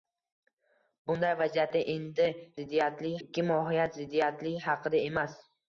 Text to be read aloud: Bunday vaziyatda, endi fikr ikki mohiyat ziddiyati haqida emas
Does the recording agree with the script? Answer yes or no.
no